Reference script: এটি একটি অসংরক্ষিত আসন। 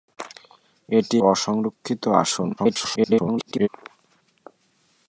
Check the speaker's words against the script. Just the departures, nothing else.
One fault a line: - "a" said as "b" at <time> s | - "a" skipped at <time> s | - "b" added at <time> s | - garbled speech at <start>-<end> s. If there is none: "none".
- "একটি" skipped at 1.1 s
- garbled speech at 2.6-3.7 s